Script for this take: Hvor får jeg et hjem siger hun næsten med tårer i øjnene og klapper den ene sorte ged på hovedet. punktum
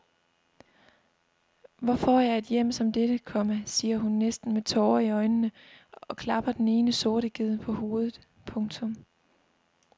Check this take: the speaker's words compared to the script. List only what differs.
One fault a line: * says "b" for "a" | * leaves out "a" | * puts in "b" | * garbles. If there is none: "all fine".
* puts in "som dette komma"